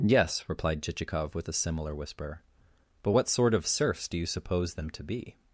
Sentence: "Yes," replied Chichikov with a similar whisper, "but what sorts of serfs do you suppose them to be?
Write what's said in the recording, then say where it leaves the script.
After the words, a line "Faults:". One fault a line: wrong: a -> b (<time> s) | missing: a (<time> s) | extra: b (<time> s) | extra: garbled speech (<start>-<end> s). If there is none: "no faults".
"Yes," replied Chichikov with a similar whisper, "but what sort of serfs do you suppose them to be?
Faults:
wrong: sorts -> sort (3.3 s)